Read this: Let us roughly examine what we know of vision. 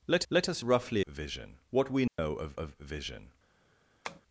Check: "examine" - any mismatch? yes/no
yes